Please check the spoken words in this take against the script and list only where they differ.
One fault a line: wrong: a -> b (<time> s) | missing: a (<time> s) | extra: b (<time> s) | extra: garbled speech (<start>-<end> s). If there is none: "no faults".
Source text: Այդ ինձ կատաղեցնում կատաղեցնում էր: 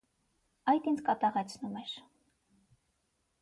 missing: կատաղեցնում (1.8 s)